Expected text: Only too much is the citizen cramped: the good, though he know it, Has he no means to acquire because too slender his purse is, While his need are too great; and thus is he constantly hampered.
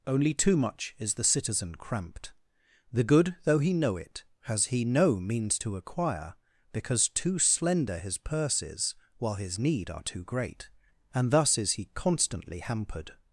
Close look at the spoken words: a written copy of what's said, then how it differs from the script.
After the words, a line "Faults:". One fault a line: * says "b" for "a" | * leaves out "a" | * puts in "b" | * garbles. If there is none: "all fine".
Only too much is the citizen cramped: the good, though he know it, Has he no means to acquire because too slender his purse is, While his need are too great; and thus is he constantly hampered.
Faults:
all fine